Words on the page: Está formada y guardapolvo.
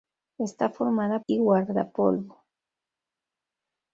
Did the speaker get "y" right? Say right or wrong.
right